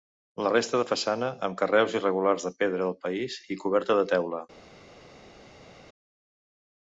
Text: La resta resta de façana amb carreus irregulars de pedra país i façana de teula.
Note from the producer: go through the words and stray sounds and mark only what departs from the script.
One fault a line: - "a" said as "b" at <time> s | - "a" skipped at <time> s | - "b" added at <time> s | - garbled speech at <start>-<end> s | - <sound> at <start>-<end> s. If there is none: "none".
- "resta" skipped at 0.8 s
- "del" added at 2.8 s
- "façana" said as "coberta" at 3.6 s